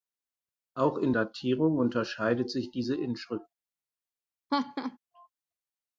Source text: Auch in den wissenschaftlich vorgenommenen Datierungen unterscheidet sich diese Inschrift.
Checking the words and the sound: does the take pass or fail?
fail